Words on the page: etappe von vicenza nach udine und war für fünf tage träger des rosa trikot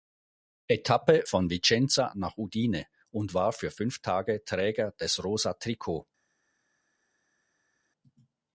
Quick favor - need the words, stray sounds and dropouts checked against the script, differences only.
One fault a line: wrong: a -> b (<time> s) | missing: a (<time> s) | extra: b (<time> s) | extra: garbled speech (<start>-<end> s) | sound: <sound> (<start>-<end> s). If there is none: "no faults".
no faults